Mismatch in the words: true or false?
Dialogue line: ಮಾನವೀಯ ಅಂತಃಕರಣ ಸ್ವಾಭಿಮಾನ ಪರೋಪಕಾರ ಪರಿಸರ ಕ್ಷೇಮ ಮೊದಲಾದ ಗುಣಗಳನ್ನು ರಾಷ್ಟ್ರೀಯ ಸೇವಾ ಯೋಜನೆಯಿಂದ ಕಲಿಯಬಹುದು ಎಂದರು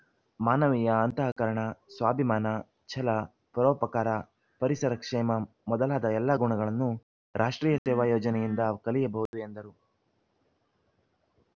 true